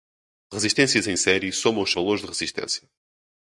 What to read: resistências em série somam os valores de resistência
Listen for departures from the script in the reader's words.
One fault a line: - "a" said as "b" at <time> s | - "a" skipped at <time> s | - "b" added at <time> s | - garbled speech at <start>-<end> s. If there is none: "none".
none